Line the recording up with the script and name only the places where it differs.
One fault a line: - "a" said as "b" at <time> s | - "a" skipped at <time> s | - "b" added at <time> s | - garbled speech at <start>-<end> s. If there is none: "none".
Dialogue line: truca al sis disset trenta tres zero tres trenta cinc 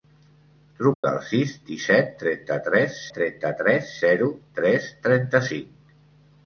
- "trenta tres" added at 3.2 s